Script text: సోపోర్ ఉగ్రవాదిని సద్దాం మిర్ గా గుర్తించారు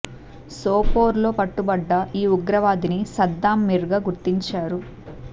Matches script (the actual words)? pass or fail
fail